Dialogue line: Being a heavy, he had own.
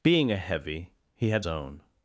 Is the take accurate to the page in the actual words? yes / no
yes